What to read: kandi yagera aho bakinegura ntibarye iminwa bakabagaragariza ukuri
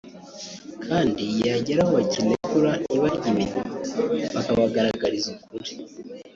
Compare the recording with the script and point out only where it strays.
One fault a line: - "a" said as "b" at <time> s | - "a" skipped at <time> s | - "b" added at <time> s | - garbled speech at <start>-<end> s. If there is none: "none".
none